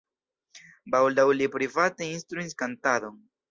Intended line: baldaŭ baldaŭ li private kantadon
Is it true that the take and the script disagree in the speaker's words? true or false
true